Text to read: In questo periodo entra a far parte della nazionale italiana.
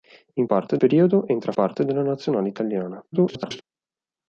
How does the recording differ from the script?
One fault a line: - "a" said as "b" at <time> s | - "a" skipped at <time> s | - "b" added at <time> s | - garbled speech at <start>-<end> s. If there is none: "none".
- "questo" said as "parte" at 0.4 s
- "far" skipped at 1.5 s
- garbled speech at 3.1-3.6 s